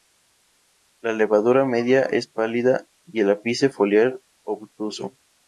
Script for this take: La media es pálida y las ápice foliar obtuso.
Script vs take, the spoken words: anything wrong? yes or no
yes